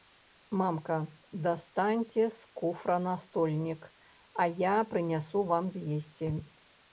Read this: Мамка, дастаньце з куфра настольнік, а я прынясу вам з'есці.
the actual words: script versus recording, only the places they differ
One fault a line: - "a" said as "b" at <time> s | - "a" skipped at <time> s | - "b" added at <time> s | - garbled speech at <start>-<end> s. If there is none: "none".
none